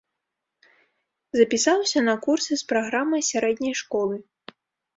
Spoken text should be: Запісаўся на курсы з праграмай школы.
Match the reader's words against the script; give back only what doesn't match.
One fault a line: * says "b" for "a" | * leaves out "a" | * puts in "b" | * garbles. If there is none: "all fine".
* puts in "сярэдняй"